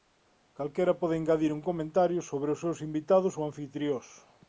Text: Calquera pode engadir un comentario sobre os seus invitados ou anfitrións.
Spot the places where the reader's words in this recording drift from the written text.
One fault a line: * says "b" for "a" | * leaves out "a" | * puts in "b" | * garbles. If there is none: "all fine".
all fine